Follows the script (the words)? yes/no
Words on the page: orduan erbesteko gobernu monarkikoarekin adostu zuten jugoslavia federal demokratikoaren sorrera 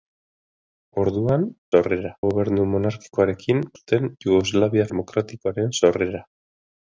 no